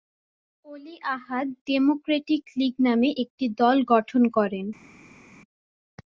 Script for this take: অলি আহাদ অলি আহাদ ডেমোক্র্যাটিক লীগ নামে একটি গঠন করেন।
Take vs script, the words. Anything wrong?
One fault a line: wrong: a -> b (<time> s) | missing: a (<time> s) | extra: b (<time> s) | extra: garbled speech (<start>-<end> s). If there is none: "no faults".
missing: অলি আহাদ (1.5 s)
extra: দল (3.6 s)